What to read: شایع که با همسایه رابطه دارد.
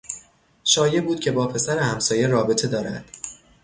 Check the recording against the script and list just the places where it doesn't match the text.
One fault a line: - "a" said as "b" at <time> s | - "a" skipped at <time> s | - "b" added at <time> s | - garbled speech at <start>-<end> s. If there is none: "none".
- "بود" added at 1.0 s
- "پسر" added at 1.5 s